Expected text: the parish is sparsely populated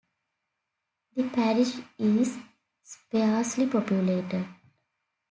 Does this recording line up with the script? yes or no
yes